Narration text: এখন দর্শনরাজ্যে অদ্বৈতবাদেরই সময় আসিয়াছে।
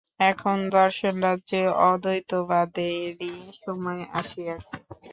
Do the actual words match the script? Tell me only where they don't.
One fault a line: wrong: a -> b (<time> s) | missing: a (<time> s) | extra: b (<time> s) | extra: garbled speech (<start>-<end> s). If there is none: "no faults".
no faults